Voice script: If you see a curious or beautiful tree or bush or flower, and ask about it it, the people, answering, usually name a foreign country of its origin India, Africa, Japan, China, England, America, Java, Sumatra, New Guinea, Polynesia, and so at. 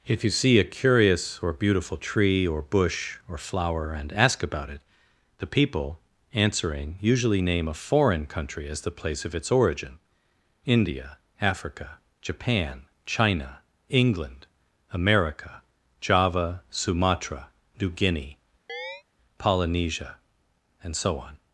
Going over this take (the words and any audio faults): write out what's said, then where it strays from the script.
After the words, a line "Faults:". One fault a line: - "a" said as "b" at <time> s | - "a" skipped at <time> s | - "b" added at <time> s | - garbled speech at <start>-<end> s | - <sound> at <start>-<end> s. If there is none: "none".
If you see a curious or beautiful tree or bush or flower, and ask about it, the people, answering, usually name a foreign country as the place of its origin India, Africa, Japan, China, England, America, Java, Sumatra, New Guinea, Polynesia, and so on.
Faults:
- "it" skipped at 4.8 s
- "as the place" added at 8.7 s
- chirp at 18.7-19.0 s
- "at" said as "on" at 21.2 s